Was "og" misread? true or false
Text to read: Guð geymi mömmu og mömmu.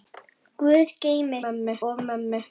false